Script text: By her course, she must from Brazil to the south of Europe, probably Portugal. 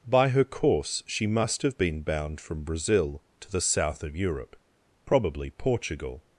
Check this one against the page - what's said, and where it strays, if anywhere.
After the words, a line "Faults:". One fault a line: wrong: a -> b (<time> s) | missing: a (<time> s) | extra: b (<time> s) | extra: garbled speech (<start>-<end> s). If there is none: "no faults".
By her course, she must have been bound from Brazil to the south of Europe, probably Portugal.
Faults:
extra: have been bound (1.6 s)